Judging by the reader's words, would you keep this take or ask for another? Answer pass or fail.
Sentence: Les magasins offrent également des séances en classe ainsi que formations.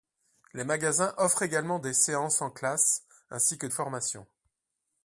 pass